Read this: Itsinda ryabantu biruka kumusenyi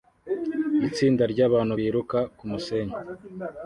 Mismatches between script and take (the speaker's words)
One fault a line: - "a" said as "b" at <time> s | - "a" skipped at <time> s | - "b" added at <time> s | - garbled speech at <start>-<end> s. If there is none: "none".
none